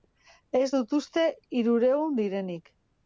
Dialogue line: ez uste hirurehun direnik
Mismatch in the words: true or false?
true